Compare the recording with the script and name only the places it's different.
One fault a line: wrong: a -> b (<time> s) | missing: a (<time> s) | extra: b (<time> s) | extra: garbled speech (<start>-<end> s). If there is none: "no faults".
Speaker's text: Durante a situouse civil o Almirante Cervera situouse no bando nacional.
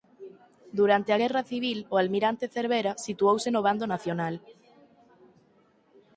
wrong: situouse -> guerra (1.2 s)